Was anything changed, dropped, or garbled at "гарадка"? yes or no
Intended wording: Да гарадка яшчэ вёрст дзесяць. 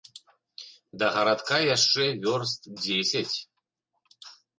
no